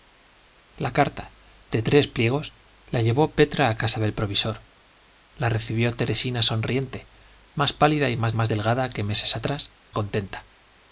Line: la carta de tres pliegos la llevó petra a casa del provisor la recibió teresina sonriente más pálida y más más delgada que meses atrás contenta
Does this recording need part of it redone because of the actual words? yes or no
no